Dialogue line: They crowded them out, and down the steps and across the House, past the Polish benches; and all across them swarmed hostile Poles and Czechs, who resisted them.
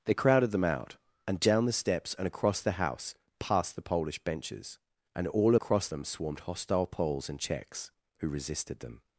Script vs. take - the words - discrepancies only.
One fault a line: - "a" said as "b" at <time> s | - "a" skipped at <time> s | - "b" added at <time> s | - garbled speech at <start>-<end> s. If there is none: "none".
none